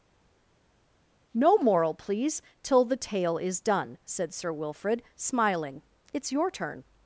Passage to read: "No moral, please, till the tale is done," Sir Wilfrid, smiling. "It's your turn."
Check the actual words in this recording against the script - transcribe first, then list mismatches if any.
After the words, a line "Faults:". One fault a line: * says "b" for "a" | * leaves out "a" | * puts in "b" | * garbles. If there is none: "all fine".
"No moral, please, till the tale is done," said Sir Wilfrid, smiling. "It's your turn."
Faults:
* puts in "said"